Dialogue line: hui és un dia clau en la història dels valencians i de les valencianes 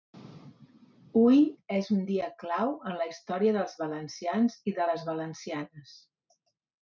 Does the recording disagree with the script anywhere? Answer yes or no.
no